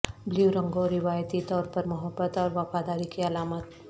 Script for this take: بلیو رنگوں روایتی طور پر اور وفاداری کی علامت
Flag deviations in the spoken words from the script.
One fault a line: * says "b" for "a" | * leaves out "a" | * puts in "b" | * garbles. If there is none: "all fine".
* puts in "محبت"